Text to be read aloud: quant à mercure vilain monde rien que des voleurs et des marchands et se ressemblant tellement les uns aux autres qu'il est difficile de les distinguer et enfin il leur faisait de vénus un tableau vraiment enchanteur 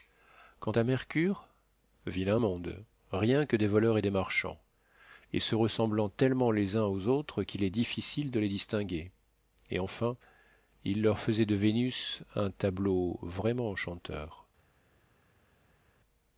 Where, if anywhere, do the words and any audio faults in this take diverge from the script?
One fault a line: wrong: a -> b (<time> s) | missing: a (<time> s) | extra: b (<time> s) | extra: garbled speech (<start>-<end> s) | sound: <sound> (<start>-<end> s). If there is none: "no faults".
no faults